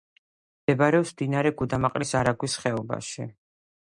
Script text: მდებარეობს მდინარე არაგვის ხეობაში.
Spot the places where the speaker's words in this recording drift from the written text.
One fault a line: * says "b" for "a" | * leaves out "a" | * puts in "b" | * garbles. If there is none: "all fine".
* puts in "გუდამაყრის"